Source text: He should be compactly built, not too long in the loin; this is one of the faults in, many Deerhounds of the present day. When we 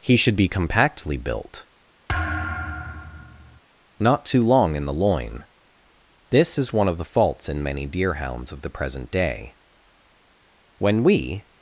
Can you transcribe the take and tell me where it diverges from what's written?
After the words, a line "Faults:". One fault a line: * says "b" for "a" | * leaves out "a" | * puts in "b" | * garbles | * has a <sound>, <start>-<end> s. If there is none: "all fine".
He should be compactly built, not too long in the loin; this is one of the faults in, many Deerhounds of the present day. When we
Faults:
* has a thud, 2.1-3.6 s